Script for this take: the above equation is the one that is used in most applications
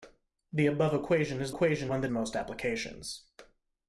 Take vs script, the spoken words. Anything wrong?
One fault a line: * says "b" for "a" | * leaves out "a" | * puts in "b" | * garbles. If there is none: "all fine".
* says "equation" for "the"
* leaves out "is used in"